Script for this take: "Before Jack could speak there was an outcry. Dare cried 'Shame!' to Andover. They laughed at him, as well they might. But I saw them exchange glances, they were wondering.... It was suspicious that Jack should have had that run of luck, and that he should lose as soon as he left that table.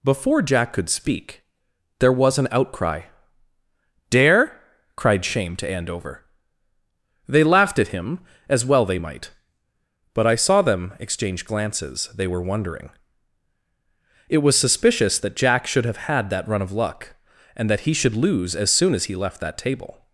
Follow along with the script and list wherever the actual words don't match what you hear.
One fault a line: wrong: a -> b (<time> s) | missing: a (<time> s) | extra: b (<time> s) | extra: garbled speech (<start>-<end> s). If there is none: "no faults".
no faults